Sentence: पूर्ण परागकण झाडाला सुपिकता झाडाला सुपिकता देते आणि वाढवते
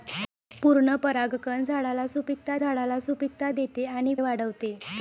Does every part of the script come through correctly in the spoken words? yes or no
yes